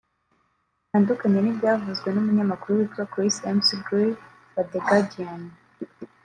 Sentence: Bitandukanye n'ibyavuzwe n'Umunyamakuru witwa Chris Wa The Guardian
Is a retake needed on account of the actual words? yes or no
yes